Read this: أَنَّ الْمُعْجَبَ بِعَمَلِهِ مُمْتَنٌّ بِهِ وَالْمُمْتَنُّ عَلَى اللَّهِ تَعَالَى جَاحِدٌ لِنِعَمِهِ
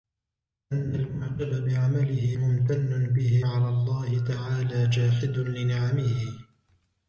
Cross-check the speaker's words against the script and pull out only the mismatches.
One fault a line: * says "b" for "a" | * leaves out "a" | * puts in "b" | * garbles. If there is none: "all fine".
* leaves out "وَالْمُمْتَنُّ"